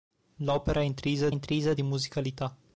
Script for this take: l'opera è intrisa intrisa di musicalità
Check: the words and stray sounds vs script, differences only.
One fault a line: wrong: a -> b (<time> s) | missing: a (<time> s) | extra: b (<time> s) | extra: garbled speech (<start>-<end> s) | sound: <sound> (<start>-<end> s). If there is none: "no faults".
no faults